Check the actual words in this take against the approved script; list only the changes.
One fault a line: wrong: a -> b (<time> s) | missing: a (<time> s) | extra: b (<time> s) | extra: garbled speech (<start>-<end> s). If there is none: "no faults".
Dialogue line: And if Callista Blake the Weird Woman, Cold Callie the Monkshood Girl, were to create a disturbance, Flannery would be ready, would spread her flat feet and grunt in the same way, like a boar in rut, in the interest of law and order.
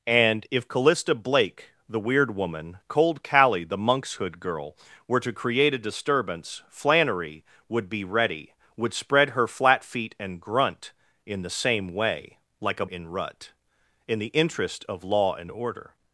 missing: boar (12.8 s)